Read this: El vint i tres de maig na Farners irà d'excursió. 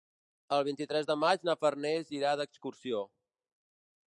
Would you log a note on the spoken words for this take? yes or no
no